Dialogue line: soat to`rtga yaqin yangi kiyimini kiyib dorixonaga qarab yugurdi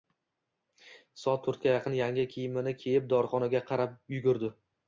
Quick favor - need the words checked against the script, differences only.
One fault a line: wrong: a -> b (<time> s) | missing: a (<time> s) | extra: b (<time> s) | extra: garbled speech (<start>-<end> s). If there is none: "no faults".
no faults